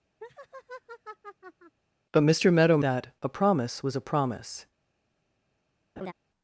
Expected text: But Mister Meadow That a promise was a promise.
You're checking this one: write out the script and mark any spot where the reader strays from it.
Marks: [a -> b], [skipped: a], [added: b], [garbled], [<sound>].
[laugh] But Mister Meadow That a promise was a promise. [laugh]